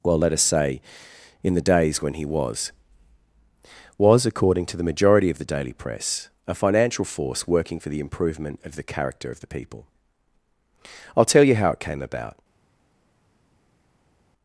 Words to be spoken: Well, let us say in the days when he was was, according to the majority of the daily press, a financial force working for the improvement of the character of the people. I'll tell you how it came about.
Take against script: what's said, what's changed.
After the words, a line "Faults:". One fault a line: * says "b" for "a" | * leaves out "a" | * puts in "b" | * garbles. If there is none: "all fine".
Well, let us say in the days when he was was, according to the majority of the daily press, a financial force working for the improvement of the character of the people. I'll tell you how it came about.
Faults:
all fine